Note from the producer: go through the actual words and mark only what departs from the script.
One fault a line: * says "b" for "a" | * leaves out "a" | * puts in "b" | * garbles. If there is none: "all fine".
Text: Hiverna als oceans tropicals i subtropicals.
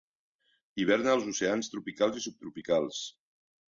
all fine